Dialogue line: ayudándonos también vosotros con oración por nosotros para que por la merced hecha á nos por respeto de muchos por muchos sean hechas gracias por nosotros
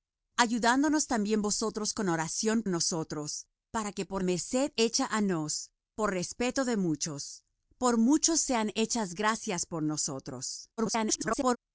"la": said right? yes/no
no